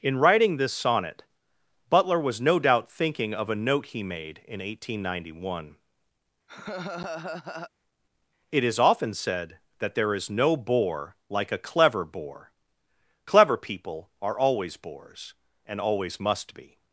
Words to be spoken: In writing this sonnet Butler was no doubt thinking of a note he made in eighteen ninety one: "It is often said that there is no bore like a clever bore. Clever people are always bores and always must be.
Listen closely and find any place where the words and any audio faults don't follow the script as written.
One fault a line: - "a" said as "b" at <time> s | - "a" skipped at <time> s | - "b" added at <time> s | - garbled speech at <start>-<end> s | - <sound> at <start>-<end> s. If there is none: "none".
- laugh at 6.5-7.7 s